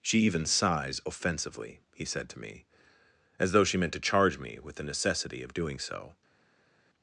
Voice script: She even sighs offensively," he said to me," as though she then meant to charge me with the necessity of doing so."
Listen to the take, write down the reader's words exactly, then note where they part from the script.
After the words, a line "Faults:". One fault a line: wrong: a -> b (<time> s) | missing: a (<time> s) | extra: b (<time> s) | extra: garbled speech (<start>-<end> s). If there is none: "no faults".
She even sighs offensively," he said to me," as though she meant to charge me with the necessity of doing so."
Faults:
missing: then (3.8 s)